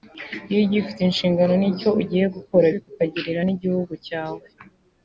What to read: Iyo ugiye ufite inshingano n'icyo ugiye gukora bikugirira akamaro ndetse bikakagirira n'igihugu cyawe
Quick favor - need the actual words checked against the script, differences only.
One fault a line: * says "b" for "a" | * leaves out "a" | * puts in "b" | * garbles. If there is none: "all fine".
* leaves out "bikugirira akamaro ndetse"